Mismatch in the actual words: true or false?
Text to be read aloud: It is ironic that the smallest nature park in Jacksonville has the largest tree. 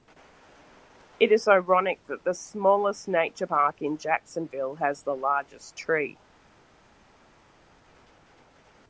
false